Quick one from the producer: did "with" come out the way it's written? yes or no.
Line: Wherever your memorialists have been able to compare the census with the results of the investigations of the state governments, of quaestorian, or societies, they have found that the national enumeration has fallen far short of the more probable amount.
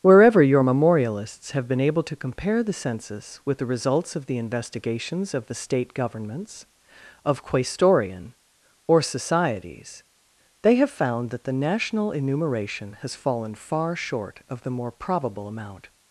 yes